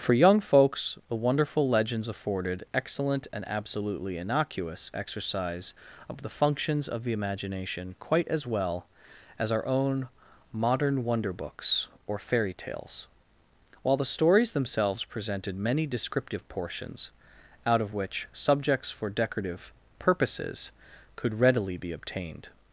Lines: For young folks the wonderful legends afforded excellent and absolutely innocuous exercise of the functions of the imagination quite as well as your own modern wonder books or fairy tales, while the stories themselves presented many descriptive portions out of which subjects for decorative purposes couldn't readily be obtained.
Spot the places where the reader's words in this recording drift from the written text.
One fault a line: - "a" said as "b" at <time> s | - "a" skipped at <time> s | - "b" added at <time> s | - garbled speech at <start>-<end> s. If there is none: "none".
- "your" said as "our" at 9.5 s
- "couldn't" said as "could" at 21.2 s